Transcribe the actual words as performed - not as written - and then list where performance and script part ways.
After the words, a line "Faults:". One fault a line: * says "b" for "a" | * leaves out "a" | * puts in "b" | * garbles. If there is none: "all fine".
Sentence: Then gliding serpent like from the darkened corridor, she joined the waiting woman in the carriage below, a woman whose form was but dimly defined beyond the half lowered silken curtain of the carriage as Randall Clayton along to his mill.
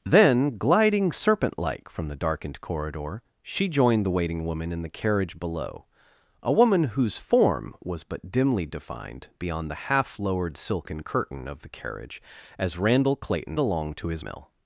Then gliding serpent like from the darkened corridor, she joined the waiting woman in the carriage below, a woman whose form was but dimly defined beyond the half lowered silken curtain of the carriage as Randall Clayton along to his mill.
Faults:
all fine